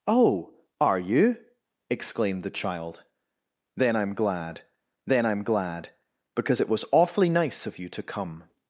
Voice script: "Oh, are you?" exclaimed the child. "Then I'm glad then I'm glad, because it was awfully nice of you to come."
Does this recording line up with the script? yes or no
yes